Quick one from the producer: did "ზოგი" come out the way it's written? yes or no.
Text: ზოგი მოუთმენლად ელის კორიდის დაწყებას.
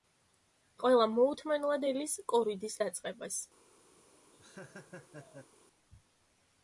no